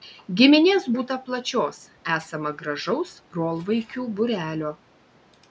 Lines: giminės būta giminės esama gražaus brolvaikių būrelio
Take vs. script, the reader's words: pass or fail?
fail